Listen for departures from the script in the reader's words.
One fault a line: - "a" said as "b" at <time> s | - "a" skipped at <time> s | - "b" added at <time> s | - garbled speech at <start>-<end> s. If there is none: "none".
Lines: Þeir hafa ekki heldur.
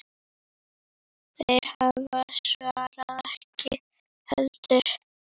- "svarið" added at 2.4 s